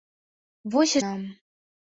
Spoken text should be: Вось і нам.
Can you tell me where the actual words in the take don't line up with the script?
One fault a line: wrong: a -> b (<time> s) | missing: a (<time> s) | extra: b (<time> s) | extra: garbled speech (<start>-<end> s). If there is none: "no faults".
no faults